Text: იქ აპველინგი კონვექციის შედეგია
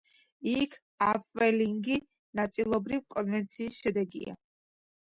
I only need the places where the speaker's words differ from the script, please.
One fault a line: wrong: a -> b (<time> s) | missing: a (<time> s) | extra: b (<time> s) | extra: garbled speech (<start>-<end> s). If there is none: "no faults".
extra: ნაწილობრივ (2.4 s)